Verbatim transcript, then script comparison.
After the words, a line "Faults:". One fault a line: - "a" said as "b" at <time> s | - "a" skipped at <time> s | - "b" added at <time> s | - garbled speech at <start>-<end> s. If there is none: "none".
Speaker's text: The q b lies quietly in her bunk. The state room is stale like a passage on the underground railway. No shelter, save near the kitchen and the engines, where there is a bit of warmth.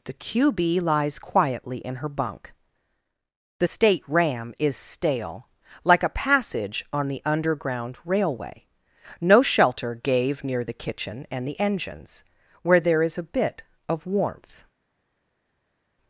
The q b lies quietly in her bunk. The state ram is stale like a passage on the underground railway. No shelter, gave near the kitchen and the engines, where there is a bit of warmth.
Faults:
- "room" said as "ram" at 4.1 s
- "save" said as "gave" at 9.9 s